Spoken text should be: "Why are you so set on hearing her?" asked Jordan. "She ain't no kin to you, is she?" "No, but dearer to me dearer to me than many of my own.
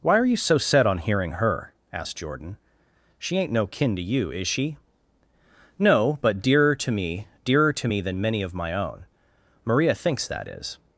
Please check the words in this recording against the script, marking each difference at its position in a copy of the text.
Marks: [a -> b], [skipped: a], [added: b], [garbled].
"Why are you so set on hearing her?" asked Jordan. "She ain't no kin to you, is she?" "No, but dearer to me dearer to me than many of my own. [added: Maria thinks that is]